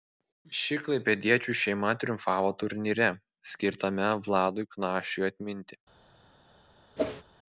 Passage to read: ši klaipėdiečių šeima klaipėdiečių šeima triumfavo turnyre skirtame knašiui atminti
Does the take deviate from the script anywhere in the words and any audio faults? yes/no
yes